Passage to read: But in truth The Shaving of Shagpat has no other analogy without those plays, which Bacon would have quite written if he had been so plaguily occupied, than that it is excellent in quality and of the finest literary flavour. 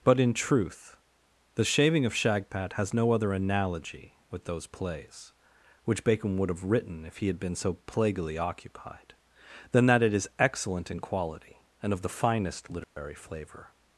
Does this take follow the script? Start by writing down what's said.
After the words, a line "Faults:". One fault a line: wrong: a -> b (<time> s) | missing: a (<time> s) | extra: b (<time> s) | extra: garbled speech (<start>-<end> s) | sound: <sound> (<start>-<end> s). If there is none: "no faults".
But in truth The Shaving of Shagpat has no other analogy with those plays, which Bacon would have written if he had been so plaguily occupied, than that it is excellent in quality and of the finest literary flavour.
Faults:
wrong: without -> with (4.3 s)
missing: quite (6.6 s)
sound: dropout (12.8-13.0 s)